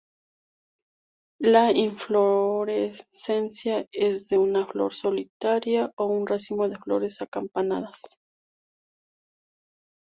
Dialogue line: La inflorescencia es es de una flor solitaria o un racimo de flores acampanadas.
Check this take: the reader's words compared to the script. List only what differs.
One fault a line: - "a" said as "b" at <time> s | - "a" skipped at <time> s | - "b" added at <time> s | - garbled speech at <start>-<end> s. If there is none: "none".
- "es" skipped at 4.3 s